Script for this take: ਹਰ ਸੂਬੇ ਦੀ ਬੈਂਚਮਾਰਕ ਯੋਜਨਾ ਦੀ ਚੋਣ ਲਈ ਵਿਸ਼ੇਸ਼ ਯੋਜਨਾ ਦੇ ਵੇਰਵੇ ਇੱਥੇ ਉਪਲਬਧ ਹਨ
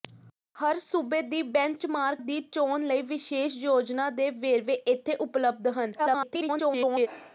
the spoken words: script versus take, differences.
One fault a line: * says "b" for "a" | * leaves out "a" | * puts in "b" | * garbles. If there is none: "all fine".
* leaves out "ਯੋਜਨਾ"
* garbles